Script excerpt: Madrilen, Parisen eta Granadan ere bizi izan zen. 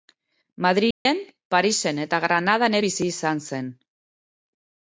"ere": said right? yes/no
no